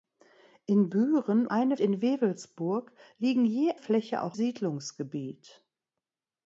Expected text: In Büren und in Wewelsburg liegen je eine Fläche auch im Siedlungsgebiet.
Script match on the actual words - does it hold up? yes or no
no